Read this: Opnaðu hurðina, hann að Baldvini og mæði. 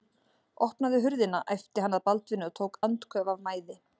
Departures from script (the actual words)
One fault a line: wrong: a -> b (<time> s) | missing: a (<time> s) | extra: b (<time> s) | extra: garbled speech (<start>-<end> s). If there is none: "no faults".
extra: æpti (1.6 s)
extra: tók andköf af (2.6 s)